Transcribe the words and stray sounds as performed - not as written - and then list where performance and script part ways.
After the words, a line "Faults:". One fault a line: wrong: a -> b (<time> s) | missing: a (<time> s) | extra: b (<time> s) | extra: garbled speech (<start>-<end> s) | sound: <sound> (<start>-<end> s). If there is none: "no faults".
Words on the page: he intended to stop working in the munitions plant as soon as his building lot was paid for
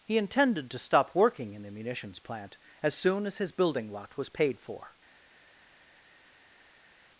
he intended to stop working in the munitions plant as soon as his building lot was paid for
Faults:
no faults